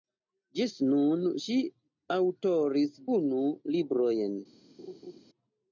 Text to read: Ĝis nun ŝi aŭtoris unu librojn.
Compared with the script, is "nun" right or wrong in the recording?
right